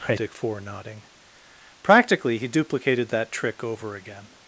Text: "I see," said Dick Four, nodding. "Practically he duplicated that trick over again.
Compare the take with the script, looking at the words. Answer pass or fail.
fail